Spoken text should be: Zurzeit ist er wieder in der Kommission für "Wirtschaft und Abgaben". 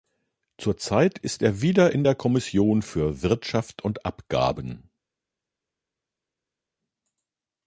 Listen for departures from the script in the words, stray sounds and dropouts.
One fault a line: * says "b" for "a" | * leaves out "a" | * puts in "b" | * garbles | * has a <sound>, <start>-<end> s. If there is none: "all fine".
all fine